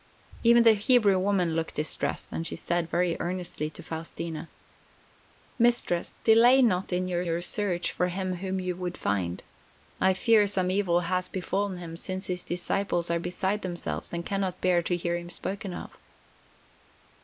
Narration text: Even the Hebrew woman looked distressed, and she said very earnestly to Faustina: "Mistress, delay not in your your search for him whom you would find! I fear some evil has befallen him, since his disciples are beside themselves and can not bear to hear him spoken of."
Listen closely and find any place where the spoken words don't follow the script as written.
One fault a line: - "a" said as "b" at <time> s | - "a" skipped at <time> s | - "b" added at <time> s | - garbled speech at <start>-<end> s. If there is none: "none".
none